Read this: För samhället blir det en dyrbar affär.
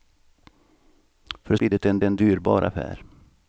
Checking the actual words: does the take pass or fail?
fail